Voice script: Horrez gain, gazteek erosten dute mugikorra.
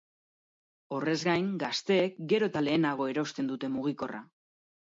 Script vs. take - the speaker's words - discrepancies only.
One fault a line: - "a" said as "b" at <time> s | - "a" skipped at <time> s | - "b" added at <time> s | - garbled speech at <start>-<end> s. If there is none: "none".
- "gero eta lehenago" added at 2.3 s